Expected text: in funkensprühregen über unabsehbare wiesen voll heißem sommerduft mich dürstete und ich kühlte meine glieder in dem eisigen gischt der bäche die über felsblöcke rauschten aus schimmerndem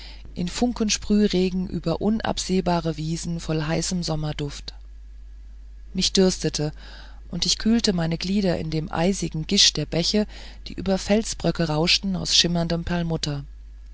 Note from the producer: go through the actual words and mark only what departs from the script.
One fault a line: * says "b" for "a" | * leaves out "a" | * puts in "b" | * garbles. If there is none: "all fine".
all fine